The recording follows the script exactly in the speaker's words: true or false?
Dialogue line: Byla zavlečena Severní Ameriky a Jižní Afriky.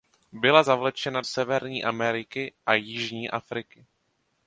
true